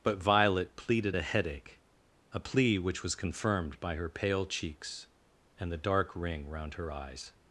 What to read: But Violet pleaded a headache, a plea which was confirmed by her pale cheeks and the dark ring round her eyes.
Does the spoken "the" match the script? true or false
true